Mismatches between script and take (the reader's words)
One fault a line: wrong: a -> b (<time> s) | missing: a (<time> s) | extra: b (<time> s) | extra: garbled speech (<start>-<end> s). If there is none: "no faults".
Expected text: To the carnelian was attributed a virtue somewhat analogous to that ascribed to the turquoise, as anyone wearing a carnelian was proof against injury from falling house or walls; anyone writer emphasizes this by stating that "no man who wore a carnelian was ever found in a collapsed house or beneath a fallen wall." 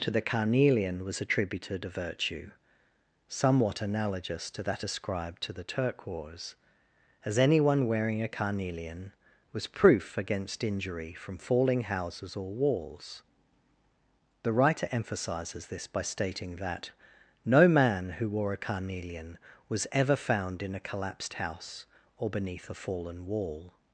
wrong: house -> houses (11.8 s)
wrong: anyone -> the (14.4 s)